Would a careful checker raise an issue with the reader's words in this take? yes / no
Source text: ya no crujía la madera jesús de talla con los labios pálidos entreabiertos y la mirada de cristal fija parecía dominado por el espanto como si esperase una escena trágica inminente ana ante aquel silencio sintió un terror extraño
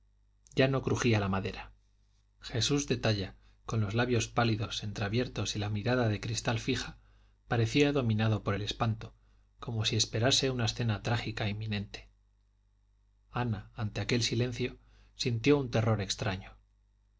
no